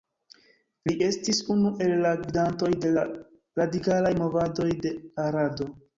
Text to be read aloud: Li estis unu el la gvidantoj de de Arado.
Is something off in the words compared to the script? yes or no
yes